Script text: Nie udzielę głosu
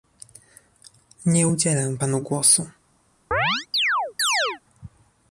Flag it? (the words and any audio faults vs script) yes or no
yes